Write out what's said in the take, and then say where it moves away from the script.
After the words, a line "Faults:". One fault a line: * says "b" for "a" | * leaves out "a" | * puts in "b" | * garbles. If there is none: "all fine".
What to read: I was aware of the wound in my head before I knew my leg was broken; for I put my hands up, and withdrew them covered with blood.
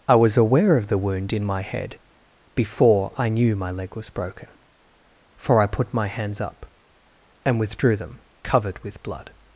I was aware of the wound in my head before I knew my leg was broken; for I put my hands up, and withdrew them covered with blood.
Faults:
all fine